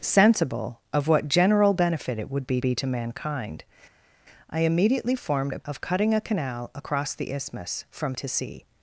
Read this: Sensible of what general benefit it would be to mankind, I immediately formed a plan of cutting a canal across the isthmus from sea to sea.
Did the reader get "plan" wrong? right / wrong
wrong